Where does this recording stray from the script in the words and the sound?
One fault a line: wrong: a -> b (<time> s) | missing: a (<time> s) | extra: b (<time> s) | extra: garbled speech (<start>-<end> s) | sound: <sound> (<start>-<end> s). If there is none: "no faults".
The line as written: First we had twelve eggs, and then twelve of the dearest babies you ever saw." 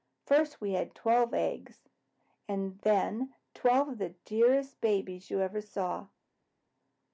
no faults